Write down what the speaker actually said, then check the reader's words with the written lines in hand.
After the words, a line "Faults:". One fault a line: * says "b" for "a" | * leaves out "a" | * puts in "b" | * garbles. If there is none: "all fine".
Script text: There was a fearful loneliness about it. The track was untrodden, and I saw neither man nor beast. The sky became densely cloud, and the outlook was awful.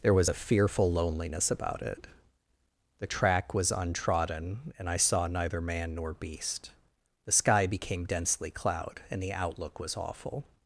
There was a fearful loneliness about it. The track was untrodden, and I saw neither man nor beast. The sky became densely cloud, and the outlook was awful.
Faults:
all fine